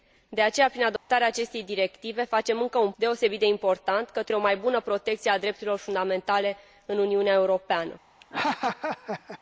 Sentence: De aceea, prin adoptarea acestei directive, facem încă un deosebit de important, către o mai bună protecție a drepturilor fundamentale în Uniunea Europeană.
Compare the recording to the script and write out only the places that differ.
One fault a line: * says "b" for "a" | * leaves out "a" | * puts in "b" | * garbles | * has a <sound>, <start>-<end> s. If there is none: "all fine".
* has a dropout, 1.0-1.1 s
* has a laugh, 8.2-9.4 s